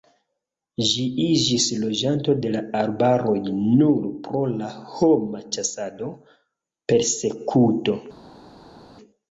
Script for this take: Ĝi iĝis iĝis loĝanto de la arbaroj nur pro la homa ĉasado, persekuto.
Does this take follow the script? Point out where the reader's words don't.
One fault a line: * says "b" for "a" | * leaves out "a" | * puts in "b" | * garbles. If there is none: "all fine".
* leaves out "iĝis"